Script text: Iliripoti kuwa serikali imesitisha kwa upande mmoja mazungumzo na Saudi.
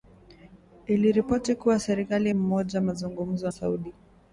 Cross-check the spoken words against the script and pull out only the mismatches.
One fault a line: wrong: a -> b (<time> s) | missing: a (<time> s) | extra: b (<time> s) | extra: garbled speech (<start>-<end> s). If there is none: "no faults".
missing: imesitisha kwa upande (2.3 s)
missing: na (3.5 s)